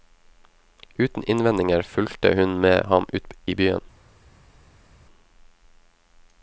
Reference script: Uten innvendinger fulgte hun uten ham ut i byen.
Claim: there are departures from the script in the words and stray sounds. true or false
true